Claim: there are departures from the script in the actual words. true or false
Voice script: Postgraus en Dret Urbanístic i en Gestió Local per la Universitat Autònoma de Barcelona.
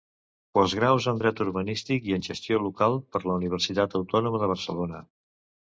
false